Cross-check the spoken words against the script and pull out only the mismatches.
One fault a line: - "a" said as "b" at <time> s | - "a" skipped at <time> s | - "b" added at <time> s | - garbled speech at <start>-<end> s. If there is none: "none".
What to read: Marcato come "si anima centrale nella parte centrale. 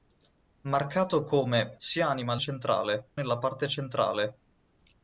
none